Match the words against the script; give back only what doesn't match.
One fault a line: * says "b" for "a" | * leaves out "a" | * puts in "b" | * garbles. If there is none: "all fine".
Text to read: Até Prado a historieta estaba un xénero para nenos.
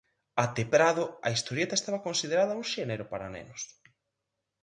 * puts in "considerada"